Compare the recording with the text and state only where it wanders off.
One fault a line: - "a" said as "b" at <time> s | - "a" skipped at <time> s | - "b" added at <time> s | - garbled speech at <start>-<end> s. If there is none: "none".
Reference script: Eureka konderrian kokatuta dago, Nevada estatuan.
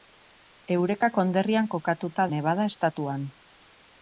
- "dago" skipped at 2.3 s